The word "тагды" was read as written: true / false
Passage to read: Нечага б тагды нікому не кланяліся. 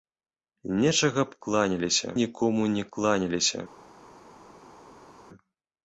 false